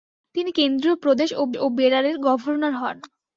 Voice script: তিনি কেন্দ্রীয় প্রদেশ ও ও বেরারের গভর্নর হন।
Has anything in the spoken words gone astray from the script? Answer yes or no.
no